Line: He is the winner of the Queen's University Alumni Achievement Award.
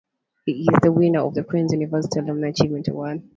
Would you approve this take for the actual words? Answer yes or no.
yes